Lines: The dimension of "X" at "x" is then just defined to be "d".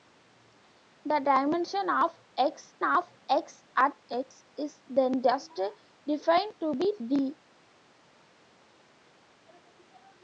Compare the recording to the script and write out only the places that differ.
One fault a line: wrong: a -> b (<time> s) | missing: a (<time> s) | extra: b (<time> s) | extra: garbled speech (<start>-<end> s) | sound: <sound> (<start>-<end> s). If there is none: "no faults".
extra: of X (2.9 s)